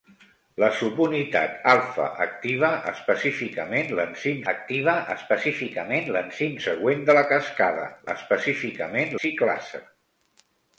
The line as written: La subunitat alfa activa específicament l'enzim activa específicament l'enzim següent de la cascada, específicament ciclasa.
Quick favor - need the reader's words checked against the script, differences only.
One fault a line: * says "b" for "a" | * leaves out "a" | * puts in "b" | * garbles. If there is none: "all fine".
all fine